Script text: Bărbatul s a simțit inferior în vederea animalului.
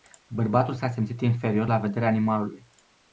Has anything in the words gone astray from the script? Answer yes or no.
yes